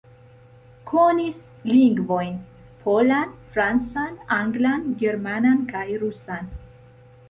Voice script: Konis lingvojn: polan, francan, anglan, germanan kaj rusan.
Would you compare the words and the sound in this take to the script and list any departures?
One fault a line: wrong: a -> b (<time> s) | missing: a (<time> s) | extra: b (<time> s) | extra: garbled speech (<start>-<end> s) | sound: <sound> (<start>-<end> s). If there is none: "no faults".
no faults